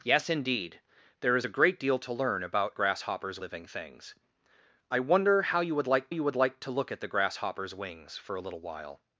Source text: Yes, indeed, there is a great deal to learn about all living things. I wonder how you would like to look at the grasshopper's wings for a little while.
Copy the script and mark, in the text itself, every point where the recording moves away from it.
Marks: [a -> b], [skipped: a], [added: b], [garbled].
Yes, indeed, there is a great deal to learn about [all -> grasshopper's] living things. I wonder how you would like [added: you would like] to look at the grasshopper's wings for a little while.